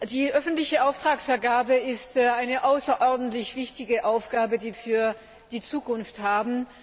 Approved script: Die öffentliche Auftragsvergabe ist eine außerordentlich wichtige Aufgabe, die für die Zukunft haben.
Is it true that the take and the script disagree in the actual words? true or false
false